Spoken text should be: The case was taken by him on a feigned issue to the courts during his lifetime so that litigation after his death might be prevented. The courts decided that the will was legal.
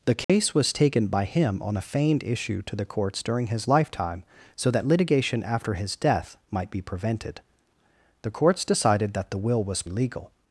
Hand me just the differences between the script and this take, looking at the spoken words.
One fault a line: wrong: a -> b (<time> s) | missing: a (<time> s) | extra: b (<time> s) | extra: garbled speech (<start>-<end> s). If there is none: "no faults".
no faults